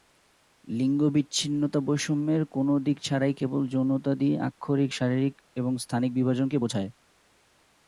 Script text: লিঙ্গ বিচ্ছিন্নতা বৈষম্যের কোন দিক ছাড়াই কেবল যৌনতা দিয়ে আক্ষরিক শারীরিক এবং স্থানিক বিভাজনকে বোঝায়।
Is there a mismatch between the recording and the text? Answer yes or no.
no